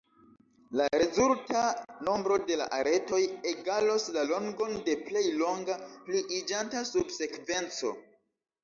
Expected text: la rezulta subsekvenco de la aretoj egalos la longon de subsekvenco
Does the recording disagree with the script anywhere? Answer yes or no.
yes